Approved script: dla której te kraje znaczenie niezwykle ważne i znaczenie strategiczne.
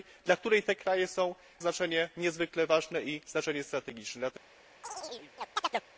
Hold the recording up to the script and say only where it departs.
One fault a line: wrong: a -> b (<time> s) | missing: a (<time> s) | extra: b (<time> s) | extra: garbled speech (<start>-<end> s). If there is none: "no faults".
no faults